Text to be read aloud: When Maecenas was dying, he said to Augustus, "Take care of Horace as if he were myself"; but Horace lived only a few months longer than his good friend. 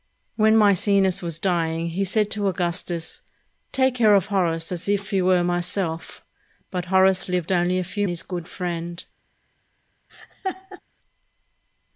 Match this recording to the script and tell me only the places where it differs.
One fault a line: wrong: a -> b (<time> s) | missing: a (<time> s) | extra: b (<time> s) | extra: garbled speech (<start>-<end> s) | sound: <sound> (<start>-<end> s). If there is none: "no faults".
missing: months longer than (8.1 s)
sound: laugh (10.1-10.8 s)